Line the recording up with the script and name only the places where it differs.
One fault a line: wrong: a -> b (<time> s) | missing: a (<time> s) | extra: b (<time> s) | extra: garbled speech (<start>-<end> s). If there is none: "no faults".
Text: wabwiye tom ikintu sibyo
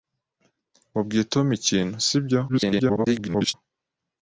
extra: garbled speech (2.5-3.5 s)